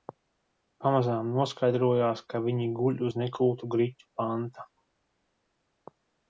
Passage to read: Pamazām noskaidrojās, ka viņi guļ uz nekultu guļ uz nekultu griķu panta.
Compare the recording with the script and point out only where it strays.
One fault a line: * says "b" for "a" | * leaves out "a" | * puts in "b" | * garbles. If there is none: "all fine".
* leaves out "guļ uz nekultu"